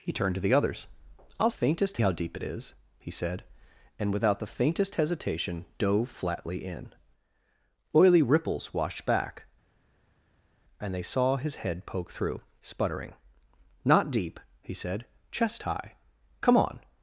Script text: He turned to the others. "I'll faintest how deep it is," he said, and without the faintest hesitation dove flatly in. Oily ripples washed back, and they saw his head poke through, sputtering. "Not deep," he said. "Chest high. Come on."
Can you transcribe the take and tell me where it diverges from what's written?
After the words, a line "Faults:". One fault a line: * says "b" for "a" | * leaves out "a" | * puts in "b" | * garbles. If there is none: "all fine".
He turned to the others. "I'll faintest how deep it is," he said, and without the faintest hesitation dove flatly in. Oily ripples washed back, and they saw his head poke through, sputtering. "Not deep," he said. "Chest high. Come on."
Faults:
all fine